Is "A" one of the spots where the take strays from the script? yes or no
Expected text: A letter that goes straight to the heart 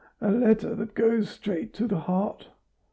no